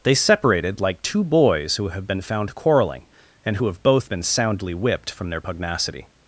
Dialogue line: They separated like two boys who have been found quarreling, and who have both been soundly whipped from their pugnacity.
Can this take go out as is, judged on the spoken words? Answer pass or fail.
pass